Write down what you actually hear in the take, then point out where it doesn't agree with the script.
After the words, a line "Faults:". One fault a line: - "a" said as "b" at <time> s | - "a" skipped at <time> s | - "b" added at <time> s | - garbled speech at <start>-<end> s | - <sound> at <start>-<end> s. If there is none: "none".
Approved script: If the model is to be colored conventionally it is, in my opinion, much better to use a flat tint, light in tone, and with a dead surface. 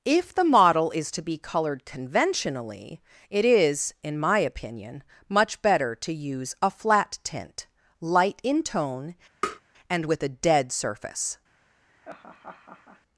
If the model is to be colored conventionally it is, in my opinion, much better to use a flat tint, light in tone, and with a dead surface.
Faults:
- tap at 9.4-9.6 s
- laugh at 11.9-13.0 s